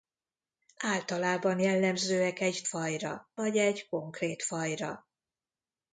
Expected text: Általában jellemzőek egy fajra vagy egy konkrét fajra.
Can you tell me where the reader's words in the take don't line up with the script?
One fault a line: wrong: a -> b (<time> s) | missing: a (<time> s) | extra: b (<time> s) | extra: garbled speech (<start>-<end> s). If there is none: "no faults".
no faults